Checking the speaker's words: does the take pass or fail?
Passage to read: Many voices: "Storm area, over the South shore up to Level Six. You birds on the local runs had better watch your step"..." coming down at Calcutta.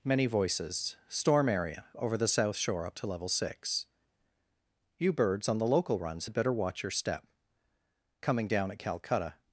pass